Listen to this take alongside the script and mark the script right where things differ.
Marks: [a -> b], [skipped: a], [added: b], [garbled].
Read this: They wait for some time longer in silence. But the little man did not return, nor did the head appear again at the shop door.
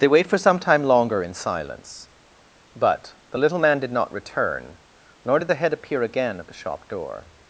They wait for some time longer in silence. But the little man did not return, nor did the head appear again at the shop door.